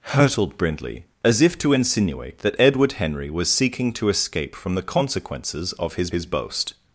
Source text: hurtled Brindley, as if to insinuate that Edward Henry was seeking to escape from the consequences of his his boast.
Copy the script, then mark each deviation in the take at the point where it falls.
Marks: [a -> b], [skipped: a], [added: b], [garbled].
hurtled Brindley, as if to insinuate that Edward Henry was seeking to escape from the consequences of his his boast.